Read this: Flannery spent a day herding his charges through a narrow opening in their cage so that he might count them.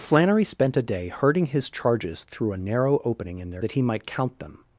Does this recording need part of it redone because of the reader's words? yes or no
yes